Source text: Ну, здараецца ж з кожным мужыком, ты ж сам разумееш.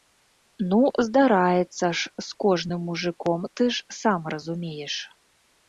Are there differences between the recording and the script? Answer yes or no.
no